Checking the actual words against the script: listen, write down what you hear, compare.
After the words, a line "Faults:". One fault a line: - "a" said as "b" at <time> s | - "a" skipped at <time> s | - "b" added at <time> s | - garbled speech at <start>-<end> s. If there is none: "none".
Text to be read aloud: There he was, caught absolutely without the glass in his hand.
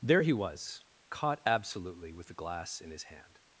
There he was, caught absolutely with the glass in his hand.
Faults:
- "without" said as "with" at 2.1 s